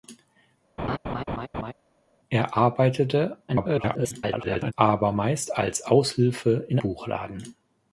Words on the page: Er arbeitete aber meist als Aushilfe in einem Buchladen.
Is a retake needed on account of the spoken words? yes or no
yes